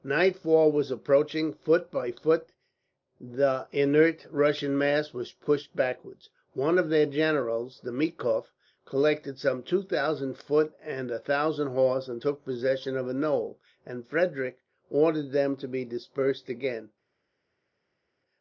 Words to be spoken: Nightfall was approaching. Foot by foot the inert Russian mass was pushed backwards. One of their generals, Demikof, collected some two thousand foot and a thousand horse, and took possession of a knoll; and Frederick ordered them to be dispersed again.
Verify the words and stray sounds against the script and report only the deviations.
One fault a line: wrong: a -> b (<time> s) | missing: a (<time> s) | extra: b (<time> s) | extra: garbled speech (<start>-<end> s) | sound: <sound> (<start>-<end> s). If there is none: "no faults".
no faults